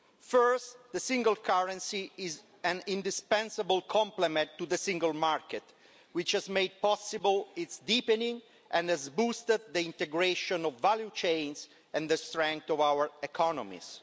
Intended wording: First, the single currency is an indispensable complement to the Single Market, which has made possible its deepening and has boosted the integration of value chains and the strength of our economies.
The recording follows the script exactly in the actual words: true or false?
true